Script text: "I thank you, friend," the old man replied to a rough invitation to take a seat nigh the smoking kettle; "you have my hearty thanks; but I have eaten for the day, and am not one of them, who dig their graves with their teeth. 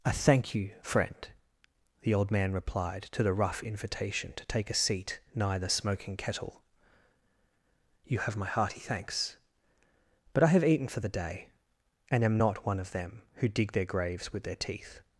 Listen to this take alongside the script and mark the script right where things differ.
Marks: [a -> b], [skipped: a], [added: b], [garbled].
"I thank you, friend," the old man replied to [a -> the] rough invitation to take a seat nigh the smoking kettle; "you have my hearty thanks; but I have eaten for the day, and am not one of them, who dig their graves with their teeth.